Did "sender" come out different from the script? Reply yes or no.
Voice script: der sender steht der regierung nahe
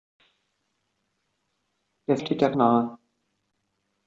yes